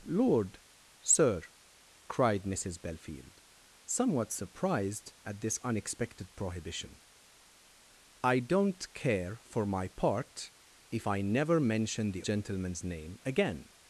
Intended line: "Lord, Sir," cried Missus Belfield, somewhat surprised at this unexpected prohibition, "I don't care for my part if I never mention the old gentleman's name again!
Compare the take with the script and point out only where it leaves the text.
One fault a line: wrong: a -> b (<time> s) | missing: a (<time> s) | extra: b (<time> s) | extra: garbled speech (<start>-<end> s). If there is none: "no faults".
missing: old (12.2 s)